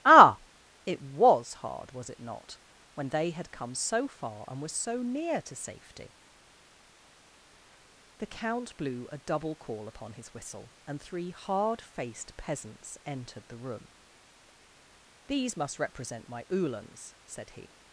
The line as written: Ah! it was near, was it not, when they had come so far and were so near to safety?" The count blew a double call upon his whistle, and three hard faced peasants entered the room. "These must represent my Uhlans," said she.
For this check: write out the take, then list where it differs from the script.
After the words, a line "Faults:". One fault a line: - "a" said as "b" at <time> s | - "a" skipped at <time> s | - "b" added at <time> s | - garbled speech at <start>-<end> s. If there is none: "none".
Ah! it was hard, was it not, when they had come so far and were so near to safety?" The count blew a double call upon his whistle, and three hard faced peasants entered the room. "These must represent my Uhlans," said he.
Faults:
- "near" said as "hard" at 1.6 s
- "she" said as "he" at 17.5 s